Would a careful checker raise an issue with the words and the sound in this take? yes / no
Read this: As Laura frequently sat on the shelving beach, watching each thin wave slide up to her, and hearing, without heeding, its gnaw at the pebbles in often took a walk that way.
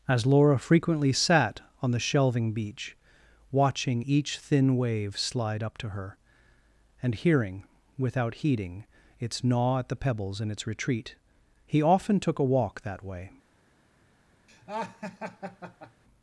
yes